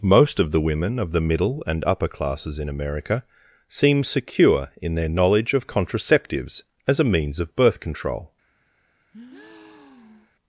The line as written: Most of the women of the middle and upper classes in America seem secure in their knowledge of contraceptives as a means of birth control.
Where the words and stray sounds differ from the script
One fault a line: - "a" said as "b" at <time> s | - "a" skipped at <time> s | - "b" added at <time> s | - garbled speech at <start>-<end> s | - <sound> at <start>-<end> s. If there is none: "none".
- breath at 9.1-10.4 s